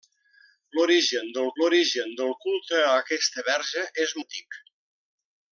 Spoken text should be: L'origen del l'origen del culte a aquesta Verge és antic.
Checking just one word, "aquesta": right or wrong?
right